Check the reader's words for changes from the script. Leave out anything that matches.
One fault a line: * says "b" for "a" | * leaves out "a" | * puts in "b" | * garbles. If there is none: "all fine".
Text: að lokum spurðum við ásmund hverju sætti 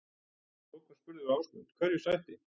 all fine